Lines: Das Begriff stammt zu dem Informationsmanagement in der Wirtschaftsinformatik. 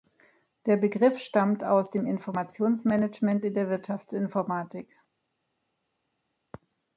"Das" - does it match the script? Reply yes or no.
no